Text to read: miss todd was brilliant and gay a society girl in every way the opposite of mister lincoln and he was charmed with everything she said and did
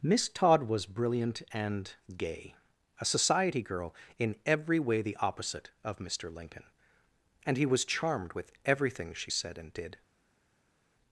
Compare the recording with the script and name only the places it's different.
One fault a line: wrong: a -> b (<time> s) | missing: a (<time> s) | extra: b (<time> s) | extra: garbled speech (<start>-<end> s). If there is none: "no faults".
no faults